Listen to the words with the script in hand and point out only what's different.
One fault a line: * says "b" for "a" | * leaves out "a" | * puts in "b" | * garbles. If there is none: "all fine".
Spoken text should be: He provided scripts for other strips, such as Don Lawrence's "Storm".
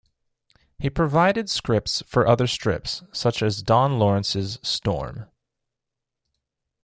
all fine